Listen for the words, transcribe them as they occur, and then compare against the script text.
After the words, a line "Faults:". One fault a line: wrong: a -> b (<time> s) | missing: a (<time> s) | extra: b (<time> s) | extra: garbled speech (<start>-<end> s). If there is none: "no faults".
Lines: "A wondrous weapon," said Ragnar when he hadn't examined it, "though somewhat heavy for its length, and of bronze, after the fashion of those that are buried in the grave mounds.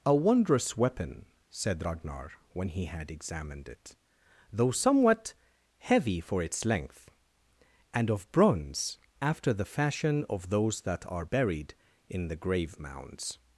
"A wondrous weapon," said Ragnar when he had examined it, "though somewhat heavy for its length, and of bronze, after the fashion of those that are buried in the grave mounds.
Faults:
wrong: hadn't -> had (2.9 s)